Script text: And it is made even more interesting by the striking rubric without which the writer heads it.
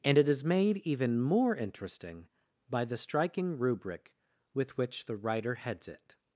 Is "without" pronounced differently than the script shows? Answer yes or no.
yes